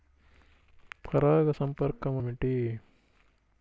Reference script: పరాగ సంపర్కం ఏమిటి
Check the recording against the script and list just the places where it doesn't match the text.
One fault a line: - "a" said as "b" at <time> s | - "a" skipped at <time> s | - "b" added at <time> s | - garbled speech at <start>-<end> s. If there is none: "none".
none